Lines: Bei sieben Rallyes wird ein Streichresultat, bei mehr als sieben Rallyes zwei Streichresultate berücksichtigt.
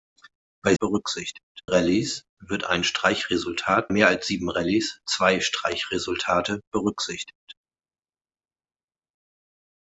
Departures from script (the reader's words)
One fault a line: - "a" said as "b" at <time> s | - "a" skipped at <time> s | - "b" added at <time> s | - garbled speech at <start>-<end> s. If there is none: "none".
- "sieben" said as "berücksichtigt" at 0.8 s
- "bei" skipped at 3.9 s